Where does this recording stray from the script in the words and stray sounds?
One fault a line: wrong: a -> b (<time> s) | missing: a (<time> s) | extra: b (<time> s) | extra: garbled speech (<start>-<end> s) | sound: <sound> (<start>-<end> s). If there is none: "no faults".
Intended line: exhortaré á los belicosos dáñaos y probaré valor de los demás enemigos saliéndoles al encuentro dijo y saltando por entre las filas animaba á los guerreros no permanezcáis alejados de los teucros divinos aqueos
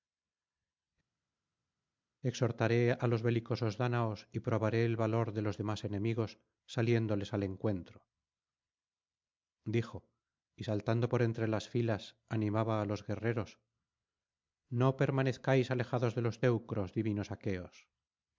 extra: el (4.8 s)